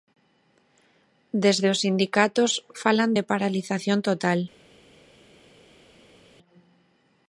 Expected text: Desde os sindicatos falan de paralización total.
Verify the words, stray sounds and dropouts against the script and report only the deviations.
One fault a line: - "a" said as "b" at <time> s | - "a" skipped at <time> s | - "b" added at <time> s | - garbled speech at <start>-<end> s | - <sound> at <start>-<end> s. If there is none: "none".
none